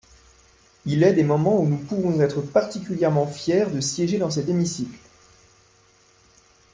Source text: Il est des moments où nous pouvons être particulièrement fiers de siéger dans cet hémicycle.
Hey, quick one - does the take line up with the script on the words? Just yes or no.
yes